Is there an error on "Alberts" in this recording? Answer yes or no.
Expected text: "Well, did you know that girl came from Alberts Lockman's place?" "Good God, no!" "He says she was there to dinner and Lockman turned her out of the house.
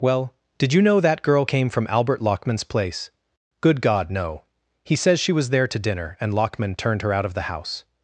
yes